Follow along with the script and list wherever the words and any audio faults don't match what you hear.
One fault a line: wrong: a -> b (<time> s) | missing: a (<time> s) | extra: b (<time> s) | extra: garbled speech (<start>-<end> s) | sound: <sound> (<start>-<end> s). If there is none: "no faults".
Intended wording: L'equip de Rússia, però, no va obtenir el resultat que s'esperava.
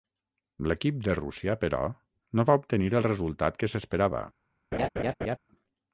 sound: laugh (4.7-5.4 s)